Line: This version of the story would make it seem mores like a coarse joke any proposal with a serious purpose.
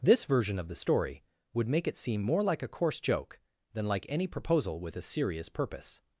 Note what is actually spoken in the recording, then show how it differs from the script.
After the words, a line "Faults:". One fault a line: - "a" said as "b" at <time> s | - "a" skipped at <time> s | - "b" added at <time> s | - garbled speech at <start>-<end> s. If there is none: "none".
This version of the story would make it seem more like a coarse joke than like any proposal with a serious purpose.
Faults:
- "mores" said as "more" at 2.2 s
- "than like" added at 3.7 s